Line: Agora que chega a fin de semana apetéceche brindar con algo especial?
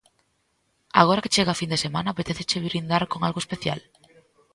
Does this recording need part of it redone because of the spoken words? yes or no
no